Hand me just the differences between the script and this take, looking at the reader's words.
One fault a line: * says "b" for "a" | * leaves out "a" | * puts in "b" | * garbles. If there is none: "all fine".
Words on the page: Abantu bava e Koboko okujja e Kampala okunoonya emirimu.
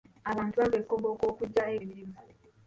* leaves out "Kampala okunoonya"